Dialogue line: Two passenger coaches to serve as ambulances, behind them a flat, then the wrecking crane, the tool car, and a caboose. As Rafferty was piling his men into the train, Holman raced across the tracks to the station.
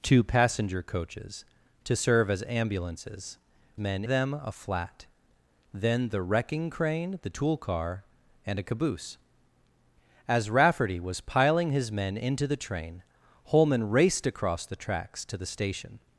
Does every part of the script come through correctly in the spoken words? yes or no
no